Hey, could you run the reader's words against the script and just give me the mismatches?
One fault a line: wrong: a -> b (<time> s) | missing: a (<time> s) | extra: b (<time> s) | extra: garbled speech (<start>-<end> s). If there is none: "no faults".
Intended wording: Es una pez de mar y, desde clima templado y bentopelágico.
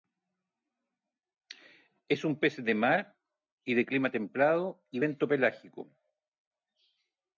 wrong: una -> un (2.2 s)
wrong: desde -> de (3.8 s)